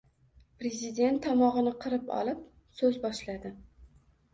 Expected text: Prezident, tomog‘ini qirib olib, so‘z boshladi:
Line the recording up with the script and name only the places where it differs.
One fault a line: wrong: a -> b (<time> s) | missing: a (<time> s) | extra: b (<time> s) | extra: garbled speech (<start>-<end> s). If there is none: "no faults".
no faults